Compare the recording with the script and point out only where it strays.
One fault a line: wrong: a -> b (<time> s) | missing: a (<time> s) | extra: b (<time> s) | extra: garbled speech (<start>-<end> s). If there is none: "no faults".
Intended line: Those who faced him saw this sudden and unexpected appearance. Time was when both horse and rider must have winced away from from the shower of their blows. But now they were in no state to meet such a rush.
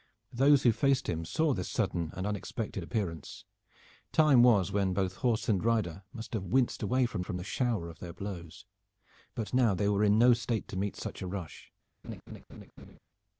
no faults